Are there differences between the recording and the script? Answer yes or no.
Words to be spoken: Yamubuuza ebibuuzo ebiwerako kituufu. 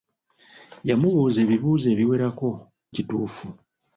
no